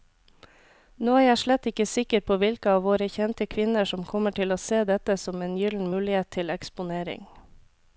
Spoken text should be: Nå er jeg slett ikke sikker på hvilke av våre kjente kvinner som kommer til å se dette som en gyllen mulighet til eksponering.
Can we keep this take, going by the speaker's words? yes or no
yes